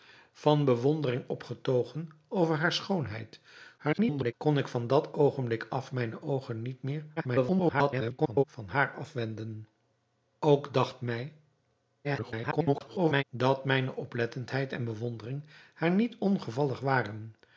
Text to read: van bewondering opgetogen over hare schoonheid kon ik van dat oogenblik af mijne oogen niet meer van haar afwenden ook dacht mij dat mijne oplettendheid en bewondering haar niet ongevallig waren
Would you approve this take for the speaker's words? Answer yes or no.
no